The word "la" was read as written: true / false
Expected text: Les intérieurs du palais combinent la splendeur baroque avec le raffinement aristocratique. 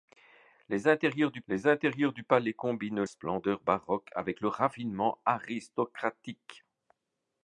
false